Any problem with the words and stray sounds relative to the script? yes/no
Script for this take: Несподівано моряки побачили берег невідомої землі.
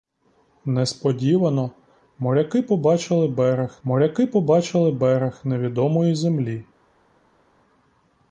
yes